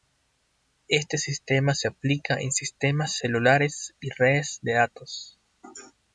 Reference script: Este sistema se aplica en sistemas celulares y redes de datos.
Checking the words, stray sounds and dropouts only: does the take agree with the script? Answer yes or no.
yes